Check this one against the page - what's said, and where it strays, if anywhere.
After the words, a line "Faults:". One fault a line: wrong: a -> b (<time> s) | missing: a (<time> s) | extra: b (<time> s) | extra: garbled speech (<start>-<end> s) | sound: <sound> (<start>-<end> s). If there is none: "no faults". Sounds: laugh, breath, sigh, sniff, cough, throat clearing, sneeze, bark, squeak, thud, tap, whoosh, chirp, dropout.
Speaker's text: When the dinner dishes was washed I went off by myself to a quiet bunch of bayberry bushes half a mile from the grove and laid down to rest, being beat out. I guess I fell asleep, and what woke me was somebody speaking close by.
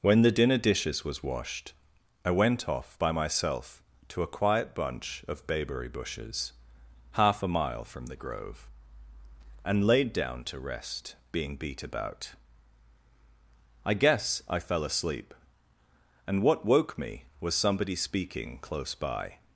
When the dinner dishes was washed I went off by myself to a quiet bunch of bayberry bushes half a mile from the grove and laid down to rest, being beat about. I guess I fell asleep, and what woke me was somebody speaking close by.
Faults:
wrong: out -> about (11.8 s)